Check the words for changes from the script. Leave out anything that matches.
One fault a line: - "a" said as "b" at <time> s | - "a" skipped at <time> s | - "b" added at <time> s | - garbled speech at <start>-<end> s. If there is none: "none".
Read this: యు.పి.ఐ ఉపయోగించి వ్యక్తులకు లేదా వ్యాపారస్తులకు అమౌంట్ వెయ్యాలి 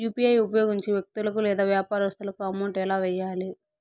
- "ఎలా" added at 2.8 s